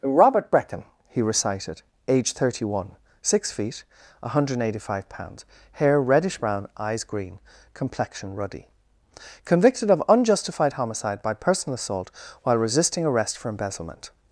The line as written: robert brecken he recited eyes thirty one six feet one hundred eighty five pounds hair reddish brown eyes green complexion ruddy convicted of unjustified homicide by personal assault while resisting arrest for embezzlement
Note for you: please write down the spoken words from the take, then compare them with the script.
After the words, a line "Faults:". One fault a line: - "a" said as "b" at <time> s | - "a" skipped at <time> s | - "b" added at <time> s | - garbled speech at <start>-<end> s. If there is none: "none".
robert brecken he recited age thirty one six feet one hundred eighty five pounds hair reddish brown eyes green complexion ruddy convicted of unjustified homicide by personal assault while resisting arrest for embezzlement
Faults:
- "eyes" said as "age" at 2.1 s